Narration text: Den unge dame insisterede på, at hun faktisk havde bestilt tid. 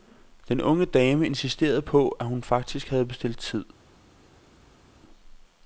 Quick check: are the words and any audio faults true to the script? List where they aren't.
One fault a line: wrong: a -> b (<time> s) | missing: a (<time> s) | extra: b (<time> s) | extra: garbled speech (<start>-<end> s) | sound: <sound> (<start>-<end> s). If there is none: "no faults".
no faults